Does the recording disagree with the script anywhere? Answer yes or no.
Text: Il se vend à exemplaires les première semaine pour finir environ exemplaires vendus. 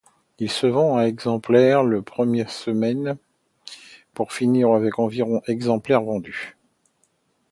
yes